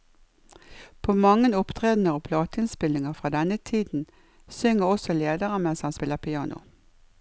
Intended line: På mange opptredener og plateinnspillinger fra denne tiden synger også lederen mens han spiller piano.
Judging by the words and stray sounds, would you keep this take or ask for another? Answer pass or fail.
pass